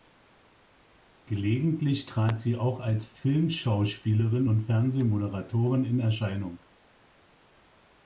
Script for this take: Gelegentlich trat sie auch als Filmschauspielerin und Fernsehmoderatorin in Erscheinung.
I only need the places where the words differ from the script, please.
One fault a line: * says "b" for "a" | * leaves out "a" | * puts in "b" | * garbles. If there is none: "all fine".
all fine